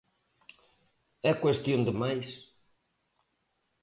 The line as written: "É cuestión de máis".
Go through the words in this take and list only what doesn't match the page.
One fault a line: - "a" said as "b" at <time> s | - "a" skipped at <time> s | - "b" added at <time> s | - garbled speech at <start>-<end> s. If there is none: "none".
none